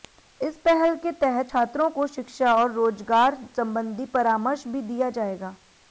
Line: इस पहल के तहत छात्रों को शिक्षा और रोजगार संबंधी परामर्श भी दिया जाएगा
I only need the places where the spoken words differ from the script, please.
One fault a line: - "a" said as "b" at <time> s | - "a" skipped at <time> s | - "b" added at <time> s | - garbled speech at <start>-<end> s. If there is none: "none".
none